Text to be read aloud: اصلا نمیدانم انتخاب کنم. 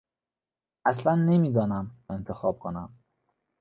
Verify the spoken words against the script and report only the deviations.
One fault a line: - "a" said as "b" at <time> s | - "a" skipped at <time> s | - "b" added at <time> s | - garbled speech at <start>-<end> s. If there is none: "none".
none